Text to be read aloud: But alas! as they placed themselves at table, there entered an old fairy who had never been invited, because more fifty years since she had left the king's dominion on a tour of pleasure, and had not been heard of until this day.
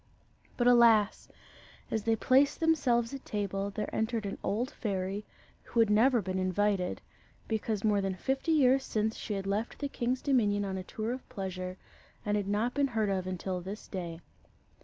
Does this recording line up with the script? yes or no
no